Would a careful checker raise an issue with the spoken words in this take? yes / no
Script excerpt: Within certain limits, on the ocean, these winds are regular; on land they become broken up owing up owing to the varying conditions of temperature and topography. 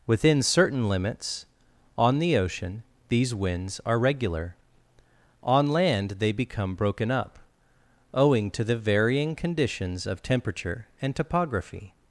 yes